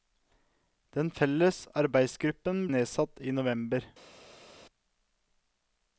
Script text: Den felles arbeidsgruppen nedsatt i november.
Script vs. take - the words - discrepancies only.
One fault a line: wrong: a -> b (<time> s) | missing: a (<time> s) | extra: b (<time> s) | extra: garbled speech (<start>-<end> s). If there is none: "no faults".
no faults